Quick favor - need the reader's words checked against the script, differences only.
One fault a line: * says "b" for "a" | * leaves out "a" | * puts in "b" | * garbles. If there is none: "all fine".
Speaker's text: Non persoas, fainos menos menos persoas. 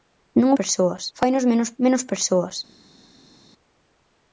all fine